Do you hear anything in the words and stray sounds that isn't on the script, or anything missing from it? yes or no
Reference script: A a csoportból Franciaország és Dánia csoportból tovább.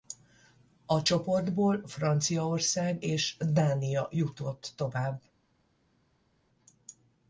yes